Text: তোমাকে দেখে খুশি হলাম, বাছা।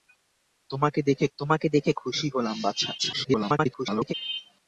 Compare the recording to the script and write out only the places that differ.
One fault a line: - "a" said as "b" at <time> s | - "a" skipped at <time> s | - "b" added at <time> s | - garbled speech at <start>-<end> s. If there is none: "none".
- "তোমাকে দেখে" added at 1.4 s
- garbled speech at 3.0-4.1 s